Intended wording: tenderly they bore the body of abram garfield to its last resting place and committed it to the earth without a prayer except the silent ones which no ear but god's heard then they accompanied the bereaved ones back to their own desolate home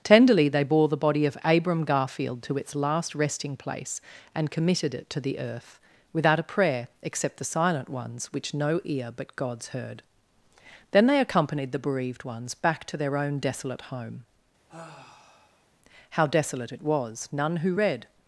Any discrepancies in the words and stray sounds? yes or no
yes